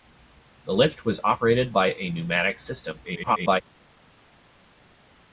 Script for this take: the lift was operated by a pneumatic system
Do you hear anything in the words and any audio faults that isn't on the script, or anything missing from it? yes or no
yes